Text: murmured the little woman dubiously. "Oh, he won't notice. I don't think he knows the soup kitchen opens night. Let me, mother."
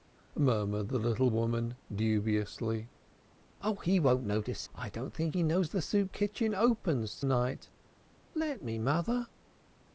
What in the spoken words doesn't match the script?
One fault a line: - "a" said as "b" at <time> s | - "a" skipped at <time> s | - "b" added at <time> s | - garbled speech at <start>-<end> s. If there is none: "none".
none